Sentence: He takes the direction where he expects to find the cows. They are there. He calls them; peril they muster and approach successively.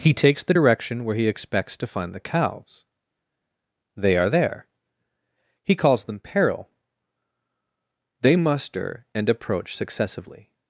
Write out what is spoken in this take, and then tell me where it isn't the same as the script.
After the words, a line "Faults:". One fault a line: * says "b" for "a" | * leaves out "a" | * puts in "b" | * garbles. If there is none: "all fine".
He takes the direction where he expects to find the cows. They are there. He calls them; peril they muster and approach successively.
Faults:
all fine